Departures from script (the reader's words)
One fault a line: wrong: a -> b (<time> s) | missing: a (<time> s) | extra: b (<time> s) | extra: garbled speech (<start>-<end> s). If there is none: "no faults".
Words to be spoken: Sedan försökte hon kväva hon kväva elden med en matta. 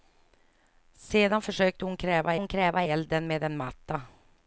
no faults